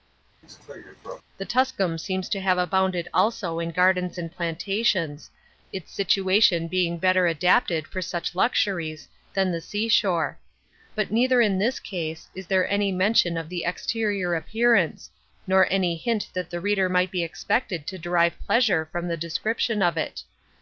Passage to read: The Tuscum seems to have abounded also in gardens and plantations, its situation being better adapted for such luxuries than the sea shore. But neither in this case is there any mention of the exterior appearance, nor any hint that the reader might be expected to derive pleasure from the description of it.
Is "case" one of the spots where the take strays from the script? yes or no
no